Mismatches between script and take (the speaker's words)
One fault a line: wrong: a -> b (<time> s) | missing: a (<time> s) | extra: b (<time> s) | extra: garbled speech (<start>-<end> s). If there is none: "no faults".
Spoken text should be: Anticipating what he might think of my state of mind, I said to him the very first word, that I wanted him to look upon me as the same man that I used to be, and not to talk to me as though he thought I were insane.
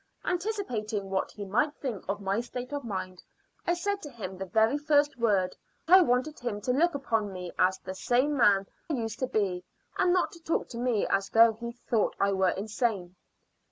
missing: that (5.5 s)
missing: that I (8.7 s)